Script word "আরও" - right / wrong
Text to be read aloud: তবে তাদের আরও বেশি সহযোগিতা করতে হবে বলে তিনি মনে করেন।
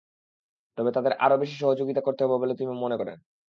right